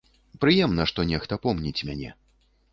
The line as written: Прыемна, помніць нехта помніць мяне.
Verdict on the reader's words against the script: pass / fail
fail